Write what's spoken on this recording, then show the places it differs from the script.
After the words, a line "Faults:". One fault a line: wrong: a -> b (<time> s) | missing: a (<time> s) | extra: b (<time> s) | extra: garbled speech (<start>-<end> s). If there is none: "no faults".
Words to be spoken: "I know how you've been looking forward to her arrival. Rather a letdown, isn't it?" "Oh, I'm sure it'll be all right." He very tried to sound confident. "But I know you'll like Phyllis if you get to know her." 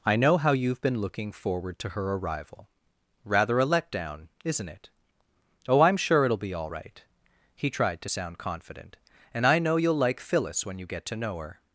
"I know how you've been looking forward to her arrival. Rather a letdown, isn't it?" "Oh, I'm sure it'll be all right." He tried to sound confident. "And I know you'll like Phyllis when you get to know her."
Faults:
missing: very (7.7 s)
wrong: But -> And (9.3 s)
wrong: if -> when (10.7 s)